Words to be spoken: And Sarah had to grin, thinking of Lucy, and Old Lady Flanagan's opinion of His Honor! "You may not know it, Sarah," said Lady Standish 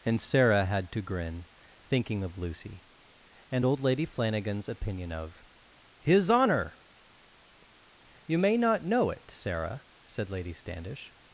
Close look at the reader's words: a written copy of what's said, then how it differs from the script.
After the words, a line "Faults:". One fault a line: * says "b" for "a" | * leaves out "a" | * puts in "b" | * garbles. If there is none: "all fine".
And Sarah had to grin, thinking of Lucy, and Old Lady Flanagan's opinion of His Honor! "You may not know it, Sarah," said Lady Standish
Faults:
all fine